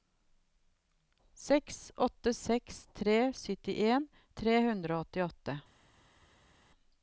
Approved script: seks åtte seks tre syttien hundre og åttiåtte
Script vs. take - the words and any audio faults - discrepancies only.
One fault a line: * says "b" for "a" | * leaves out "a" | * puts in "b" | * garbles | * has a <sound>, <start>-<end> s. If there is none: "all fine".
* puts in "tre"